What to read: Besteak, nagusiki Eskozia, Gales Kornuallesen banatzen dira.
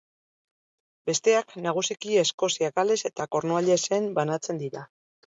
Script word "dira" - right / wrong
right